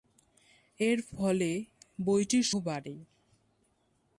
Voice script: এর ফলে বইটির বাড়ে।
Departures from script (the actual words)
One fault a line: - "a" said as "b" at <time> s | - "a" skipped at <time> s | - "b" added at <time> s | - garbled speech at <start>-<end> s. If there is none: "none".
none